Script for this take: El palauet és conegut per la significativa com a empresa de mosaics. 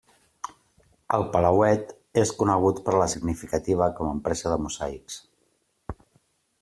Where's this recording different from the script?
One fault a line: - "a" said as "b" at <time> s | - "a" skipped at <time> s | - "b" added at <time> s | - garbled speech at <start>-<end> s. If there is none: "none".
none